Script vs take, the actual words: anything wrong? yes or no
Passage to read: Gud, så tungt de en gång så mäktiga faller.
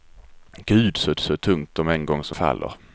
yes